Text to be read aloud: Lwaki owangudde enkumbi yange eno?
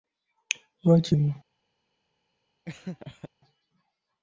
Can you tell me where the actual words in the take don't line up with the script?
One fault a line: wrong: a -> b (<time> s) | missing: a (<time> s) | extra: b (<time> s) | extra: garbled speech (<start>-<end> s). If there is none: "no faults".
missing: owangudde enkumbi yange (1.1 s)